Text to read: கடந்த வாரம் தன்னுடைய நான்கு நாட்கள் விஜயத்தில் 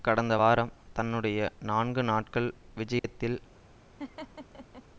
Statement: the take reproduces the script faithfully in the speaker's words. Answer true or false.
true